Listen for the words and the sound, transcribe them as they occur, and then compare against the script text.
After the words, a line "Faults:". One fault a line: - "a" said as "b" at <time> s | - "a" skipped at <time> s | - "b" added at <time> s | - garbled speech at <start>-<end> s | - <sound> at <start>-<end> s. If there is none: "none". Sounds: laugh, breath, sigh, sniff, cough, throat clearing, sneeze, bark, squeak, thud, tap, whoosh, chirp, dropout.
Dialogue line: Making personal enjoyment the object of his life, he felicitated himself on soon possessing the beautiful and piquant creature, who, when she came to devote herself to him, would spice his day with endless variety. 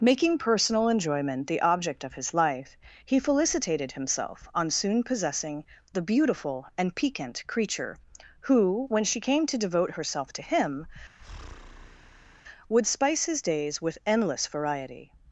Making personal enjoyment the object of his life, he felicitated himself on soon possessing the beautiful and piquant creature, who, when she came to devote herself to him, would spice his days with endless variety.
Faults:
- breath at 11.2-12.4 s
- "day" said as "days" at 13.4 s